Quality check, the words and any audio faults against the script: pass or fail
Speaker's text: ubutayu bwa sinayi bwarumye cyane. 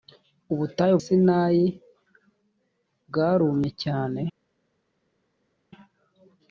fail